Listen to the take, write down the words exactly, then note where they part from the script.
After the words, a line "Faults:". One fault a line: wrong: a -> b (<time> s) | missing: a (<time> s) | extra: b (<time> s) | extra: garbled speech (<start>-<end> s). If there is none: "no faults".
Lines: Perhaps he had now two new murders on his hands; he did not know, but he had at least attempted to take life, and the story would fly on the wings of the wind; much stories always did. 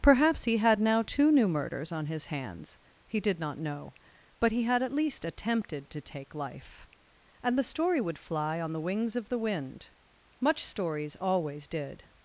Perhaps he had now two new murders on his hands; he did not know, but he had at least attempted to take life, and the story would fly on the wings of the wind; much stories always did.
Faults:
no faults